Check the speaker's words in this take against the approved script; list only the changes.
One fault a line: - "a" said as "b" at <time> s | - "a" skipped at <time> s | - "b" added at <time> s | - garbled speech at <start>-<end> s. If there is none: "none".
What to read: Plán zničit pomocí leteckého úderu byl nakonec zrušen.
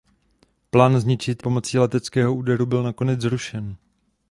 none